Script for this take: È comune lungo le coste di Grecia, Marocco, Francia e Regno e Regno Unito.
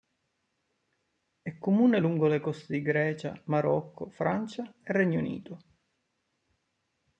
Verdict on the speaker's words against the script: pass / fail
fail